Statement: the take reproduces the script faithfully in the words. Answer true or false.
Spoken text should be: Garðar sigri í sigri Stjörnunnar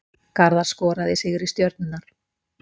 false